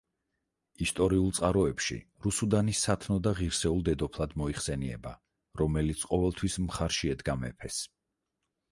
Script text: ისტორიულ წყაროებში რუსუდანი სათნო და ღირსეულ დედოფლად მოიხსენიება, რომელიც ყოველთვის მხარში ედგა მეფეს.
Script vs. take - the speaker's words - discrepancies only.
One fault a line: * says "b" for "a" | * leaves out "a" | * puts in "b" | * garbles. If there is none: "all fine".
all fine